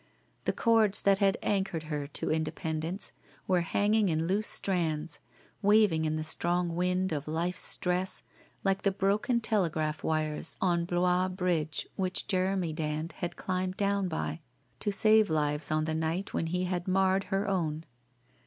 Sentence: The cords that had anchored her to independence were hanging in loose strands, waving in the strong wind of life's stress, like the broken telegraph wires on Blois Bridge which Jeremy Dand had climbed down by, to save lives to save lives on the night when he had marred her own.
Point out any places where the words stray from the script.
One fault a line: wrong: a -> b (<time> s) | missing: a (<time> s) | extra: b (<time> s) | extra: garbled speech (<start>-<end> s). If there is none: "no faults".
missing: to save lives (15.7 s)